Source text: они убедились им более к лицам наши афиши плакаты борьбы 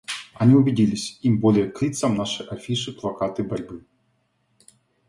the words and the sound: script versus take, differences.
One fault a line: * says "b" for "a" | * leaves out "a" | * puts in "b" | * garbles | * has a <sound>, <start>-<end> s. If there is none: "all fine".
all fine